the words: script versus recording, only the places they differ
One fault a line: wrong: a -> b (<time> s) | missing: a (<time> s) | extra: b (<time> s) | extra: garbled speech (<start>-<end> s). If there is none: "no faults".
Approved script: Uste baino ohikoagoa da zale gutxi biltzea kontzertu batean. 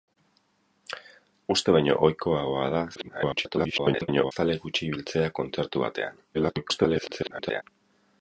extra: garbled speech (3.0-4.3 s)
extra: garbled speech (6.3-7.6 s)